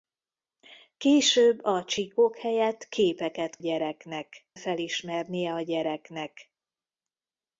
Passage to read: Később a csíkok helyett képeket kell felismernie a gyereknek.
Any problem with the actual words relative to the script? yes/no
yes